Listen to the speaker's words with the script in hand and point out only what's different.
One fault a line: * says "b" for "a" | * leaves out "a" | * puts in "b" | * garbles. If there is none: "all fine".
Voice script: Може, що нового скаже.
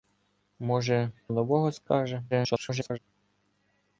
* leaves out "що"
* garbles